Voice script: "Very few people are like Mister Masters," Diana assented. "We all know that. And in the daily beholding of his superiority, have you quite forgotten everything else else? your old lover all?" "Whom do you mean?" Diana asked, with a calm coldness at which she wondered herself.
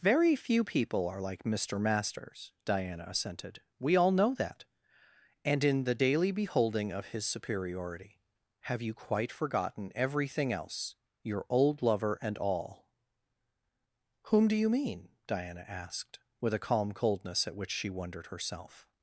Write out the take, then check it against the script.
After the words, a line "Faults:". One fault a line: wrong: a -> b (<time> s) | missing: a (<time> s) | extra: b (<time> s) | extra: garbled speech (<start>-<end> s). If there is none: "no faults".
"Very few people are like Mister Masters," Diana assented. "We all know that. And in the daily beholding of his superiority, have you quite forgotten everything else? your old lover and all?" "Whom do you mean?" Diana asked, with a calm coldness at which she wondered herself.
Faults:
missing: else (10.9 s)
extra: and (12.2 s)